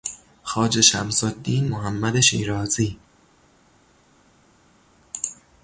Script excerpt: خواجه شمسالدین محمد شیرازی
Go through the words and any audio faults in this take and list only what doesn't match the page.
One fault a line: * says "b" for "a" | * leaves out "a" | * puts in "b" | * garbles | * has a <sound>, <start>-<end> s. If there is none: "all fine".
all fine